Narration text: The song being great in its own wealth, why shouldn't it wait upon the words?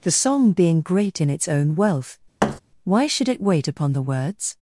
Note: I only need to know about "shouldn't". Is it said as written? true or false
false